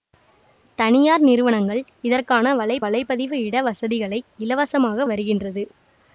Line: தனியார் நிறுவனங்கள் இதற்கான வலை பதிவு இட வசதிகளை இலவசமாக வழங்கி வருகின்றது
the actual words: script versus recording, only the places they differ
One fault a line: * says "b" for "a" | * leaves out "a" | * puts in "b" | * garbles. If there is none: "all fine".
* puts in "வலை"
* leaves out "வழங்கி"